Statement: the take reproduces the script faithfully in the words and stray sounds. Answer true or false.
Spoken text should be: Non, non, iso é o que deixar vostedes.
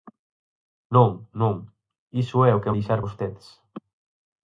true